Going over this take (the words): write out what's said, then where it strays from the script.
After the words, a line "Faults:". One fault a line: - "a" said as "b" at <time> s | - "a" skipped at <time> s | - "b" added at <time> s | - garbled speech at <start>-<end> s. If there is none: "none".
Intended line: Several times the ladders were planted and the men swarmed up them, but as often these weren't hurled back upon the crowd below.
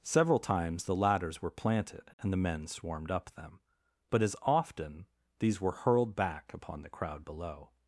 Several times the ladders were planted and the men swarmed up them, but as often these were hurled back upon the crowd below.
Faults:
- "weren't" said as "were" at 5.6 s